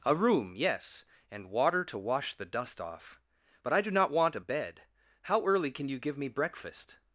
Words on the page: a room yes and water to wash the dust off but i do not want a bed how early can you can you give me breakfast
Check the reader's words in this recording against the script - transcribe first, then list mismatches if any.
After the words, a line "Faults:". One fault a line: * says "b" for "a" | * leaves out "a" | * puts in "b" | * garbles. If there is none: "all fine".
a room yes and water to wash the dust off but i do not want a bed how early can you give me breakfast
Faults:
* leaves out "can you"